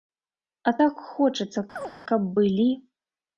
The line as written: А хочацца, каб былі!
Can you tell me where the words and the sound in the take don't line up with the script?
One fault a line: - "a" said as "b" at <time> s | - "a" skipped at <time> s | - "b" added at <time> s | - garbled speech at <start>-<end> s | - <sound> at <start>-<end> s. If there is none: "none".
- "так" added at 0.8 s
- chirp at 1.8-1.9 s